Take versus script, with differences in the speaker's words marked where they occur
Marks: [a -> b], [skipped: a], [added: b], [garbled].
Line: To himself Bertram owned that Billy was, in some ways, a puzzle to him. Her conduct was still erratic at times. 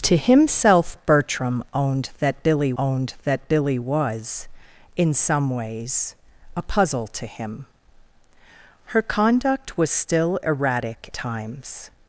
To himself Bertram owned that Billy [added: owned that Billy] was, in some ways, a puzzle to him. Her conduct was still erratic [skipped: at] times.